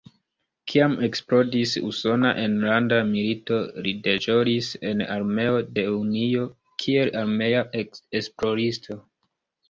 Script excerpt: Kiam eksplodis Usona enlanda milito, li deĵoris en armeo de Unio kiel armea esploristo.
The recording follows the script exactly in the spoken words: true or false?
true